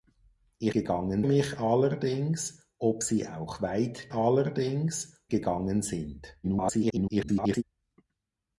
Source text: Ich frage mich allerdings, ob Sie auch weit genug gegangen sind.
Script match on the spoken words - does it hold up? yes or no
no